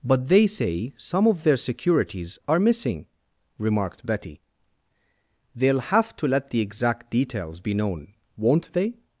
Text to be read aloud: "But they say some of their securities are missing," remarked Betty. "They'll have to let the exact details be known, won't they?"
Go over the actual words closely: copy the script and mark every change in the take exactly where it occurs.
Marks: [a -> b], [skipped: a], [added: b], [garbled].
"But they say some of their securities are missing," remarked Betty. "They'll have to let the exact details be known, won't they?"